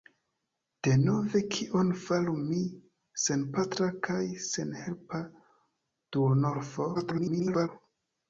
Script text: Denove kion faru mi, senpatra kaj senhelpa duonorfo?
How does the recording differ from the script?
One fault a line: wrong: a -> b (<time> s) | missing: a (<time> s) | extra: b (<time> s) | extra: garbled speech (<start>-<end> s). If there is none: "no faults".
extra: garbled speech (6.9-7.7 s)